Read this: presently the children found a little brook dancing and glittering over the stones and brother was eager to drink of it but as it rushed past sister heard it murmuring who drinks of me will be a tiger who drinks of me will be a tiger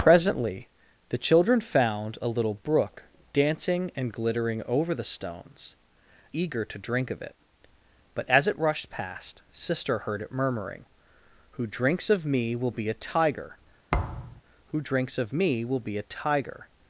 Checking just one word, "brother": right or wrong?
wrong